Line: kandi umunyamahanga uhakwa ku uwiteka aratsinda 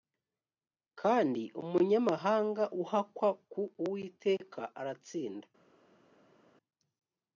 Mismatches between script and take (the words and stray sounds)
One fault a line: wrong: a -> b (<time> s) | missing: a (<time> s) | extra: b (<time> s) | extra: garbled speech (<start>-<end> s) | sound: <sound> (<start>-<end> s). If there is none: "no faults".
no faults